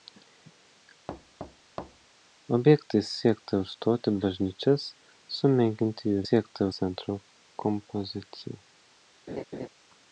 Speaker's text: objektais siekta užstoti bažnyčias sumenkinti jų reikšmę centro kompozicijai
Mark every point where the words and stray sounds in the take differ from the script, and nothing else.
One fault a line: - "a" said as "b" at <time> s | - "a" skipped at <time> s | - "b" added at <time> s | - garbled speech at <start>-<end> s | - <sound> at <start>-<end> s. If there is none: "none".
- thud at 1.1-2.1 s
- "reikšmę" said as "siekta" at 6.3 s
- laugh at 9.3-9.7 s